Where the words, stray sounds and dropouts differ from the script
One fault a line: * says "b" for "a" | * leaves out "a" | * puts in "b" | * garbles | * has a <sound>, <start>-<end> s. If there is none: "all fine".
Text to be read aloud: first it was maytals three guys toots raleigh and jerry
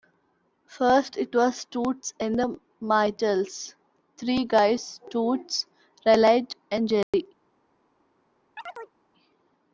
* puts in "toots and the"
* has a dropout, 7.0-7.1 s
* has a chirp, 8.6-8.9 s